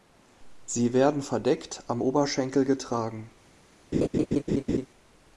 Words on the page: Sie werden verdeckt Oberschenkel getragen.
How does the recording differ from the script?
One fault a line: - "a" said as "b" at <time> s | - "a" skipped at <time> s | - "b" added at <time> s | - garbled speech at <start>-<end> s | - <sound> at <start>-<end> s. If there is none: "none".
- "am" added at 1.9 s
- laugh at 3.9-4.9 s